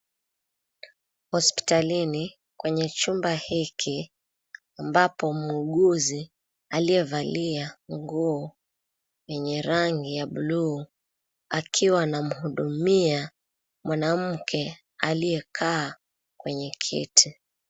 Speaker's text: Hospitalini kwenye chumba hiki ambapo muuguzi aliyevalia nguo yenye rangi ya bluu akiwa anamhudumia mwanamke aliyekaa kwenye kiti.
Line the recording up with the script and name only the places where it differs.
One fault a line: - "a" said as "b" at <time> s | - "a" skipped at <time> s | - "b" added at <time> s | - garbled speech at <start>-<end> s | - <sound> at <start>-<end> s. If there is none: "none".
none